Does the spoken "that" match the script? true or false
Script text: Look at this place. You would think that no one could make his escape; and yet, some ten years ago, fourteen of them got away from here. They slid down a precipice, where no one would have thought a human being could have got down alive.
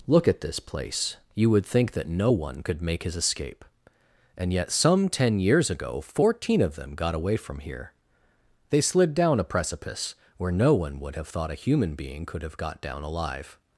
true